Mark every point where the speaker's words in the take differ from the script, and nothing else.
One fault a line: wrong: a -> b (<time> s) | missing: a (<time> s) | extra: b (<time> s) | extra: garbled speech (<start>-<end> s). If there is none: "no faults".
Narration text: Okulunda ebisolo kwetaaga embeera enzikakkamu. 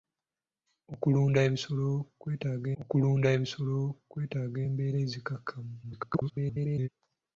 extra: okulunda ebisolo kwetaaga (2.8 s)
extra: garbled speech (5.8-6.9 s)